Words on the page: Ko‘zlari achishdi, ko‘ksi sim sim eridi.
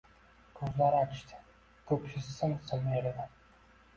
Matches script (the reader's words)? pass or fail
pass